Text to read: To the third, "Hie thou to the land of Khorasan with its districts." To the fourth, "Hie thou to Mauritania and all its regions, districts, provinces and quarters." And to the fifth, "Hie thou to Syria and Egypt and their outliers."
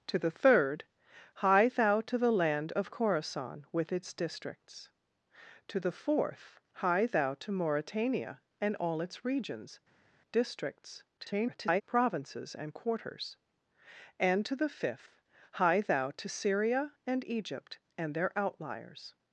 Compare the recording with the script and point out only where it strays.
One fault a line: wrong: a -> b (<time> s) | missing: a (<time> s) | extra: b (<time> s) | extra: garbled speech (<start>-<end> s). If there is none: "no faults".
extra: garbled speech (11.2-11.8 s)